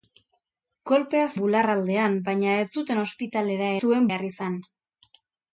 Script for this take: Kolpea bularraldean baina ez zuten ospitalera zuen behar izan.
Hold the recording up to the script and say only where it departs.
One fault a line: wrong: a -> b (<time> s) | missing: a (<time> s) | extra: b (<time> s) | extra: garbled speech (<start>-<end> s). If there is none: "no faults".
no faults